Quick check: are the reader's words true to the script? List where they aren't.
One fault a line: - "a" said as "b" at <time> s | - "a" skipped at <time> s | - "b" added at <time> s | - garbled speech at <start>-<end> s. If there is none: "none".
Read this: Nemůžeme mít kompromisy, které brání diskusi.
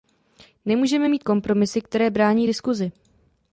none